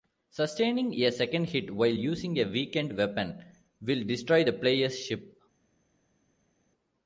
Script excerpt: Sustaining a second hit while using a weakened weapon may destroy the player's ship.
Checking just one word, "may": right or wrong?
wrong